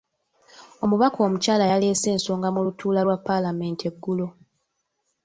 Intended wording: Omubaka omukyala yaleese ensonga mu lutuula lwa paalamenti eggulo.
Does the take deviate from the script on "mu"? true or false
false